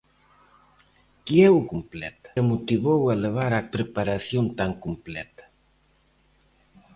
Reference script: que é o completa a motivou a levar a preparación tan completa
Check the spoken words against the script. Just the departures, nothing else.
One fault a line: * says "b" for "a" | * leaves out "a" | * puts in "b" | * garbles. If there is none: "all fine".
all fine